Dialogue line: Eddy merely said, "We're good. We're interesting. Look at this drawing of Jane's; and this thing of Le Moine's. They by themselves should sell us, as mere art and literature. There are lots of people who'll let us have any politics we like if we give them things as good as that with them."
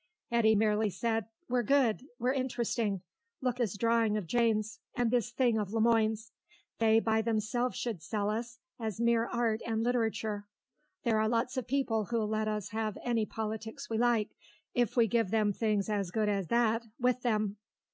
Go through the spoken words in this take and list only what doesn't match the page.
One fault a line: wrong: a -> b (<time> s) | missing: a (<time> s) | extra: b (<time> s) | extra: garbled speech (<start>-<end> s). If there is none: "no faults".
missing: at (3.6 s)